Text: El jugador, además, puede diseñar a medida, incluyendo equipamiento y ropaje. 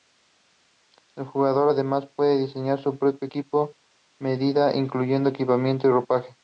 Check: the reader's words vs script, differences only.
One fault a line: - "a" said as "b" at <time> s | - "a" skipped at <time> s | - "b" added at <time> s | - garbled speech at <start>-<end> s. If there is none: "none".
- "su propio equipo" added at 2.8 s